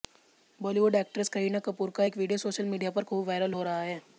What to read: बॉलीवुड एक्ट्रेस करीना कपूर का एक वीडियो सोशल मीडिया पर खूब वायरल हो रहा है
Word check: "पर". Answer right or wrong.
right